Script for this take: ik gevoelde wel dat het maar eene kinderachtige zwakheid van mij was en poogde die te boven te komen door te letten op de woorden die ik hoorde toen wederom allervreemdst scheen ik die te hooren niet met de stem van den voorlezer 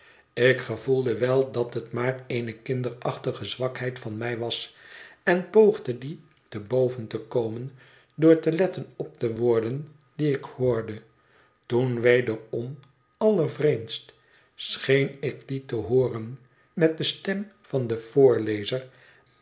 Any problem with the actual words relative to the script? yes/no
yes